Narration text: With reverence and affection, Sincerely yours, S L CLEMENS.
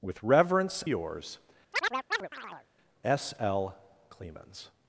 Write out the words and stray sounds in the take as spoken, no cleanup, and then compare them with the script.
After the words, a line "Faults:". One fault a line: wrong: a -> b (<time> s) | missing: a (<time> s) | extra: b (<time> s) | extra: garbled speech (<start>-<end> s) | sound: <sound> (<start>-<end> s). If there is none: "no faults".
With reverence yours, S L CLEMENS.
Faults:
missing: and affection Sincerely (0.8 s)
sound: chirp (1.7-2.7 s)